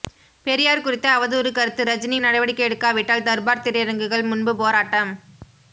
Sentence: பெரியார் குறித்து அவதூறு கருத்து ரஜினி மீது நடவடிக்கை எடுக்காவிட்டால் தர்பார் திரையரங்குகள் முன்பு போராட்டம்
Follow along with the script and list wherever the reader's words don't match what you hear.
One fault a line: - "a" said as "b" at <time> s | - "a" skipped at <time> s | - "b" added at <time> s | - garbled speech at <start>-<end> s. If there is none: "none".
- "மீது" skipped at 2.2 s